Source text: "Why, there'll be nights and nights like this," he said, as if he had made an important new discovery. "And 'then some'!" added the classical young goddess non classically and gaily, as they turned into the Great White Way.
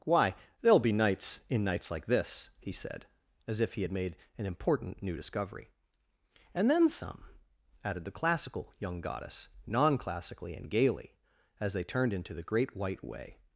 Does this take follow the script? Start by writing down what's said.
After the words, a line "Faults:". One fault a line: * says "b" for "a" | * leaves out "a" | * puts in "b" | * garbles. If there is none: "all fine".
"Why, there'll be nights in nights like this," he said, as if he had made an important new discovery. "And 'then some'!" added the classical young goddess non classically and gaily, as they turned into the Great White Way.
Faults:
* says "in" for "and"